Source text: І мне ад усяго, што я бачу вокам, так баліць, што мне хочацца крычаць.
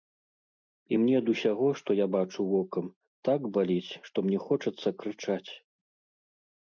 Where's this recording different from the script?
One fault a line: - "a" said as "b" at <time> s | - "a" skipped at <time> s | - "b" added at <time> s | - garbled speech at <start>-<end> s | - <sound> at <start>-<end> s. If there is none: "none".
none